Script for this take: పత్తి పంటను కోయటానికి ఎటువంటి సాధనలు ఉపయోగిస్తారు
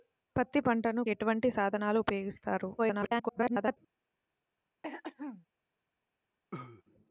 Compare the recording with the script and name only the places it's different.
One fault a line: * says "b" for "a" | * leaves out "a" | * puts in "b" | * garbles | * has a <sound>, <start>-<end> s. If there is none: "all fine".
* leaves out "కోయటానికి"
* garbles
* has a throat clearing, 4.8-5.5 s
* has a cough, 6.5-6.8 s